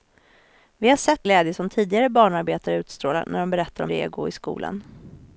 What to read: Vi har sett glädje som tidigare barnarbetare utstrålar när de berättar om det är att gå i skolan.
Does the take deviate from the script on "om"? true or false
false